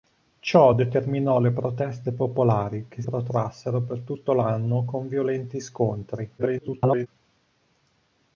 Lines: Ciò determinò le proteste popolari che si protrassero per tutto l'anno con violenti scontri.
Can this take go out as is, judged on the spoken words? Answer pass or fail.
fail